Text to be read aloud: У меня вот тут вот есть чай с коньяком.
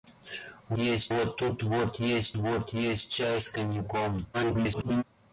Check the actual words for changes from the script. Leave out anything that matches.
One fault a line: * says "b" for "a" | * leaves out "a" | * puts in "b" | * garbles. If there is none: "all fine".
* says "есть" for "меня"
* puts in "вот есть"
* garbles